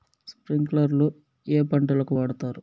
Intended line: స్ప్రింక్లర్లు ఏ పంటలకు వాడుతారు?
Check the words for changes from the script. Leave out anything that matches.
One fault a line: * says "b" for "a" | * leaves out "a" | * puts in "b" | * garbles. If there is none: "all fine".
all fine